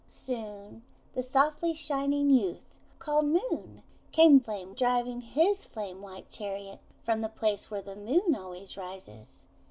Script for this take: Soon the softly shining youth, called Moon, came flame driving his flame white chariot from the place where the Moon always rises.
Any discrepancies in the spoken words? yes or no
no